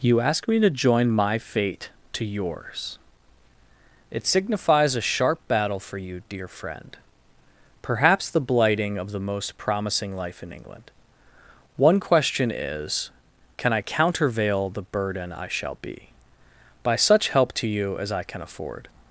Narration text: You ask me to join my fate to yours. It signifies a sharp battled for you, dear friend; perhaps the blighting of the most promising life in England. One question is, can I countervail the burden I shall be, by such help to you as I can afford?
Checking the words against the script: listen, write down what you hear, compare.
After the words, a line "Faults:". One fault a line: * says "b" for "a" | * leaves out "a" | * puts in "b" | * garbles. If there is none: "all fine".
You ask me to join my fate to yours. It signifies a sharp battle for you, dear friend; perhaps the blighting of the most promising life in England. One question is, can I countervail the burden I shall be, by such help to you as I can afford?
Faults:
* says "battle" for "battled"